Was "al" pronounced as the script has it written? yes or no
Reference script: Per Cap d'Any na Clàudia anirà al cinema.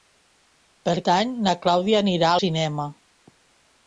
no